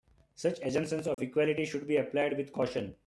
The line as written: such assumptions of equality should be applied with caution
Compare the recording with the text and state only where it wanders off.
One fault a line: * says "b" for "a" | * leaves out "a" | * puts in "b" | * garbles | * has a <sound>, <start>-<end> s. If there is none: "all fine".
* has a dropout, 1.1-1.2 s